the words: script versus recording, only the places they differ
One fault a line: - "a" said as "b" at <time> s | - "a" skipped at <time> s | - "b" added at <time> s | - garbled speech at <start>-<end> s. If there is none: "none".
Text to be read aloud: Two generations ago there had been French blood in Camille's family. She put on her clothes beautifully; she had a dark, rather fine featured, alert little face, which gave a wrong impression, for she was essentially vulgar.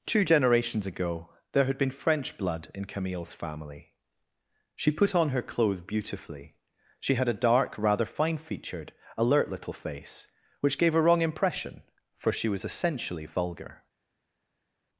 none